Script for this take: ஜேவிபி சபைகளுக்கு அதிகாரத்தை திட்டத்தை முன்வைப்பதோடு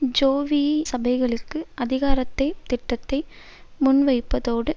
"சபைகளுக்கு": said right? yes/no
yes